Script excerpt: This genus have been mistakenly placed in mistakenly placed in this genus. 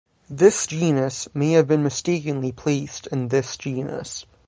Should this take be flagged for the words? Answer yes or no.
yes